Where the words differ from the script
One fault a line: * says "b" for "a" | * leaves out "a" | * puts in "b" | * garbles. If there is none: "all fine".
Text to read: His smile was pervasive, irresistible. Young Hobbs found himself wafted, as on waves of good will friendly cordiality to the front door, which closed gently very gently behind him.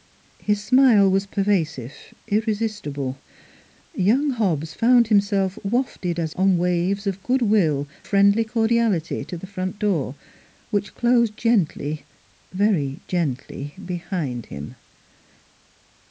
all fine